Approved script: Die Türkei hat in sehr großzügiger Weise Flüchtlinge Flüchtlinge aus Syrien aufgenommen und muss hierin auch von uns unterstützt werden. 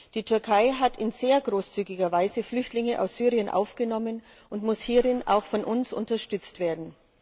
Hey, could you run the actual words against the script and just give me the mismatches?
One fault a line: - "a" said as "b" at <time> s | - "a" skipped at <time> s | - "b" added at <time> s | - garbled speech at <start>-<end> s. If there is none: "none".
- "Flüchtlinge" skipped at 3.0 s